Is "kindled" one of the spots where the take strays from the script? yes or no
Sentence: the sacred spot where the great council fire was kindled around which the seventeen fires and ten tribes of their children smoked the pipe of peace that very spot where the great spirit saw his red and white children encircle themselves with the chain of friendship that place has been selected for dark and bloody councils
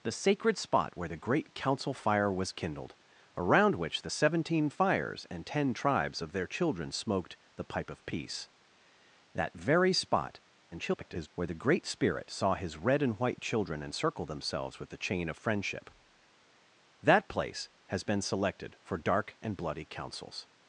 no